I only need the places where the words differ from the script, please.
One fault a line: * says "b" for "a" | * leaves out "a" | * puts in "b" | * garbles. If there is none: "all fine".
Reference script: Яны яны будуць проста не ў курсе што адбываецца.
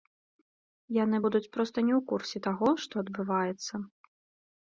* leaves out "яны"
* puts in "таго"